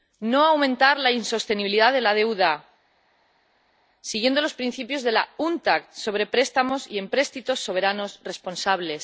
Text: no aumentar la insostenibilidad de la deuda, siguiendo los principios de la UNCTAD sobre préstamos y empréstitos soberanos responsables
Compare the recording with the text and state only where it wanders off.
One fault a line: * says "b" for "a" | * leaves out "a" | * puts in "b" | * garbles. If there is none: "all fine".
all fine